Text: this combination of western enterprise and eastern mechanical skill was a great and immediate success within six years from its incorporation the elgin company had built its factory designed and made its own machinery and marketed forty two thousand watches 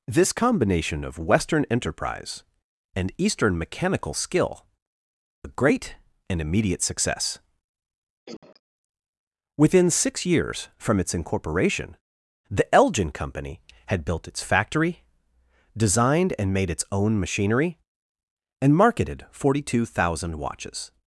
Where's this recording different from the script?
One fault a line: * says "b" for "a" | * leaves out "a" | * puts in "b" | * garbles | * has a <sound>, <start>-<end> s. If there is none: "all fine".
* leaves out "was"
* has a cough, 8.3-8.6 s